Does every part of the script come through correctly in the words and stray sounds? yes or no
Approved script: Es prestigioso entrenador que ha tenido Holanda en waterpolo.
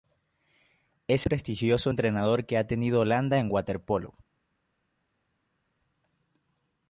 yes